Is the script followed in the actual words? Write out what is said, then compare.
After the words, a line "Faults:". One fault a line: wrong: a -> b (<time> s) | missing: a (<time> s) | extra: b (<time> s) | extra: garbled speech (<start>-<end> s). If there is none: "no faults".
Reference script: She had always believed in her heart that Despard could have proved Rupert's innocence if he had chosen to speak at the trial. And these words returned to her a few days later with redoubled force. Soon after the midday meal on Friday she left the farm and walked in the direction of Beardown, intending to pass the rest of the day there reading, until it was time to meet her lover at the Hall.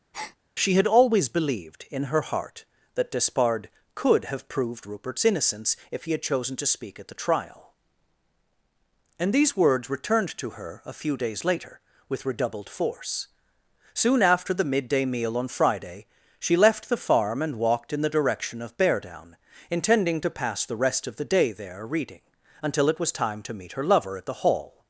She had always believed in her heart that Despard could have proved Rupert's innocence if he had chosen to speak at the trial. And these words returned to her a few days later with redoubled force. Soon after the midday meal on Friday she left the farm and walked in the direction of Beardown, intending to pass the rest of the day there reading, until it was time to meet her lover at the Hall.
Faults:
no faults